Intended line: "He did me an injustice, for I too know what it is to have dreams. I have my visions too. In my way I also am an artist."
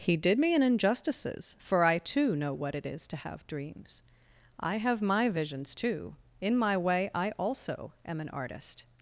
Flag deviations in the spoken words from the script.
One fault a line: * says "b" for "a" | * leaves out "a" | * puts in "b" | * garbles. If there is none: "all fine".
* says "injustices" for "injustice"